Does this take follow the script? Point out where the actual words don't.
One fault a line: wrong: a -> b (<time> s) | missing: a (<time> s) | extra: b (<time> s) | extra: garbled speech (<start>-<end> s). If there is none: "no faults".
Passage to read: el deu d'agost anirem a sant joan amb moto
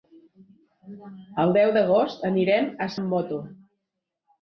missing: sant joan (2.9 s)